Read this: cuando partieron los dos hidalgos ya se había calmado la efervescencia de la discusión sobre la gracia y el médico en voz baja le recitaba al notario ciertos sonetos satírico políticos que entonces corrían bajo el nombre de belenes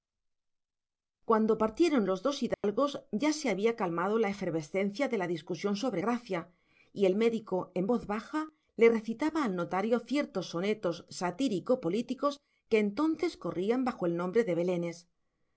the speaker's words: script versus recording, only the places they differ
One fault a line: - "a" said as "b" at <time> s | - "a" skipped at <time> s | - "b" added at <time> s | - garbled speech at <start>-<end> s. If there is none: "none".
- "la" skipped at 6.0 s